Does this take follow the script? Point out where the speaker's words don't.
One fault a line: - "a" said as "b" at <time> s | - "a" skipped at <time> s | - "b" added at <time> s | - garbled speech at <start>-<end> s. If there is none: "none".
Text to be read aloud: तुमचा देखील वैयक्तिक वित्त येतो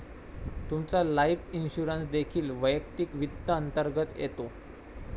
- "लाइफ इन्शुरन्स" added at 1.0 s
- "अंतर्गत" added at 3.5 s